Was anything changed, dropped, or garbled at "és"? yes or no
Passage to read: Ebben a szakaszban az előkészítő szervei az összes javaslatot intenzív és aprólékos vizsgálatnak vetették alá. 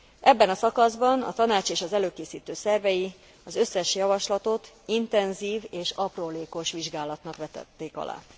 no